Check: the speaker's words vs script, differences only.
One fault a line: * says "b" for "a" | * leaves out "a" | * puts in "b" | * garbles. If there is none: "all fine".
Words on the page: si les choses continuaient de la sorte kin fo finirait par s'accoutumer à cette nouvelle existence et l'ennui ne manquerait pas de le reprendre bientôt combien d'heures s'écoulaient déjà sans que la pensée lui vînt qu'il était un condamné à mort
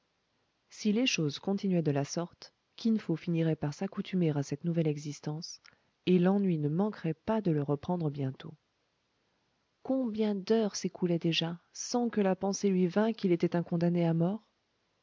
all fine